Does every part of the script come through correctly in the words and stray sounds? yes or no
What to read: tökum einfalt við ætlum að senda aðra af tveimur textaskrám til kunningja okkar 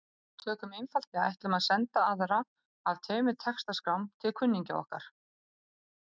yes